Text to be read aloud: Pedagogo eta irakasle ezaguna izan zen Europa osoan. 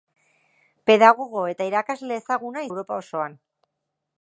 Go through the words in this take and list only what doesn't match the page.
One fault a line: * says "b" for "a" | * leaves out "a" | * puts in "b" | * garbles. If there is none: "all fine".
* leaves out "izan zen"